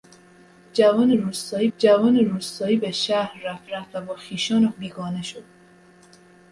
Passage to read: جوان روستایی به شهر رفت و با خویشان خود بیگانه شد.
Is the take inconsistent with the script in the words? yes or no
yes